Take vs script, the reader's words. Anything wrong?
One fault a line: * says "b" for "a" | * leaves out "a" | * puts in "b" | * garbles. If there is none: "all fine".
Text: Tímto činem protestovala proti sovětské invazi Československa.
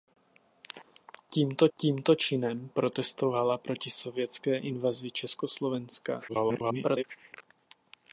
* puts in "tímto"
* garbles